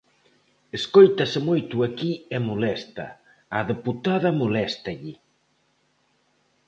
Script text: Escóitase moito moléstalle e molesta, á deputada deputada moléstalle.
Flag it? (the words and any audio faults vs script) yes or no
yes